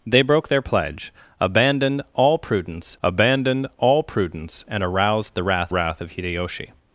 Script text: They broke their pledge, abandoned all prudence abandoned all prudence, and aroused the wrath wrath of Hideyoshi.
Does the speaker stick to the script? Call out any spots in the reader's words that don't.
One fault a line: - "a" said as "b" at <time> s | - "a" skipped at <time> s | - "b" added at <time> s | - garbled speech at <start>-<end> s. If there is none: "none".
none